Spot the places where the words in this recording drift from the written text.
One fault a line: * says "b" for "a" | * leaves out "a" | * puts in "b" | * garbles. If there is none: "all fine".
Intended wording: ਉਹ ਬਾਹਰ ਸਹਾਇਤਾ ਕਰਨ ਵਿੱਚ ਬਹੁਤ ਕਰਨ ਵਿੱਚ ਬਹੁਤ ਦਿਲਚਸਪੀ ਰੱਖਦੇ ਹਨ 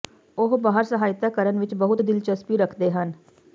* leaves out "ਕਰਨ ਵਿੱਚ ਬਹੁਤ"